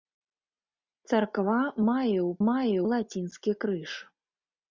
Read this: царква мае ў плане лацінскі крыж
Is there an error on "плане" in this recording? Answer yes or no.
yes